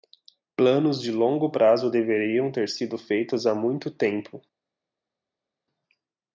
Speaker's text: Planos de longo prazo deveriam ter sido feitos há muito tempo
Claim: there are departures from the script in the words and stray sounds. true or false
false